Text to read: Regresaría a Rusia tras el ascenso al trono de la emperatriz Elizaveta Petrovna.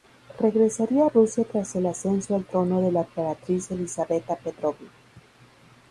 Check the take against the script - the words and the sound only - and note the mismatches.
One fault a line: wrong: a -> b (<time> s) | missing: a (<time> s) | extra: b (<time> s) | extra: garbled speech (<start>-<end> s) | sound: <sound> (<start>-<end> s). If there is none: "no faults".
no faults